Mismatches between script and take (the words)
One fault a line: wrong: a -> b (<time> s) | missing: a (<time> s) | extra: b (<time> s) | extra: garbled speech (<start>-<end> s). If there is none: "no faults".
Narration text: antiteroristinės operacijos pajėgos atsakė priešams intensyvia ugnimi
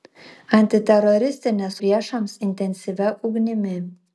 missing: operacijos pajėgos atsakė (1.8 s)